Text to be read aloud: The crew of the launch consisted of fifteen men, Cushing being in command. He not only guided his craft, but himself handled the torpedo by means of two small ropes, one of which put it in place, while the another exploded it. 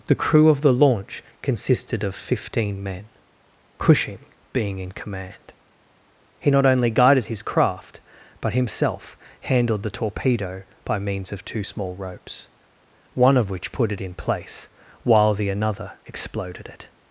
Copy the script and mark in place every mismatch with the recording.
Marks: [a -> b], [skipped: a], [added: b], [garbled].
The crew of the launch consisted of fifteen men, Cushing being in command. He not only guided his craft, but himself handled the torpedo by means of two small ropes, one of which put it in place, while the another exploded it.